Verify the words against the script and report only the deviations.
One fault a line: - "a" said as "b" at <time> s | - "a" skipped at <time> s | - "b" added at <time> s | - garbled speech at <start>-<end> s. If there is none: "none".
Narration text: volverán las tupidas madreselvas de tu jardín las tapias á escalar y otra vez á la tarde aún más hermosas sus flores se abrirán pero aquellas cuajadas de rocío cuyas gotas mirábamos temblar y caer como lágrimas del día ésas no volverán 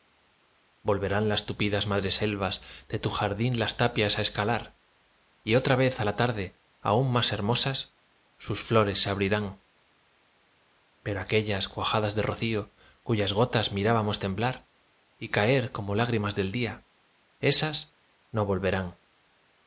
none